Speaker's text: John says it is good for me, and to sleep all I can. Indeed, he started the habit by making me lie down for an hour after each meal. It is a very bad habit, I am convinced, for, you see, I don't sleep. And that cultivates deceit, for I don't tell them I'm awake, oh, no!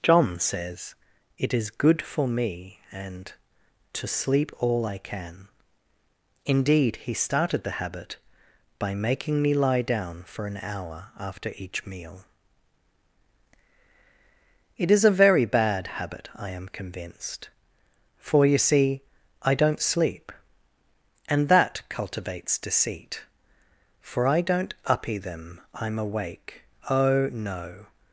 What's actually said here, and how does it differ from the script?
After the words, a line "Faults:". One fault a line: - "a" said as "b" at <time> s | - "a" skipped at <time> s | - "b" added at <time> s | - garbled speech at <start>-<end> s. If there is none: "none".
John says it is good for me, and to sleep all I can. Indeed, he started the habit by making me lie down for an hour after each meal. It is a very bad habit, I am convinced, for, you see, I don't sleep. And that cultivates deceit, for I don't uppy them I'm awake, oh, no!
Faults:
- "tell" said as "uppy" at 24.8 s